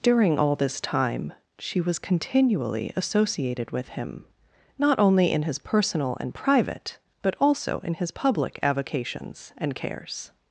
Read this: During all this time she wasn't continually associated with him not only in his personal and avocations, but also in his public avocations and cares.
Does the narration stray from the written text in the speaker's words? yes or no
yes